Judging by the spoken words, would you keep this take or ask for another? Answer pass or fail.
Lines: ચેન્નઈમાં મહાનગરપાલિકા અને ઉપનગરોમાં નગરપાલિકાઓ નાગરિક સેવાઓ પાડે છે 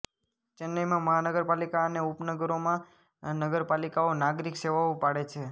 pass